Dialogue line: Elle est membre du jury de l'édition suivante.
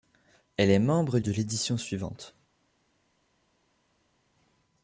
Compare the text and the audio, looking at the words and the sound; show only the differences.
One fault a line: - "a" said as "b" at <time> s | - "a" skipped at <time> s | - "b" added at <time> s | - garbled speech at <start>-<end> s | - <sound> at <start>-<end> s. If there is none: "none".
- "du jury" skipped at 1.2 s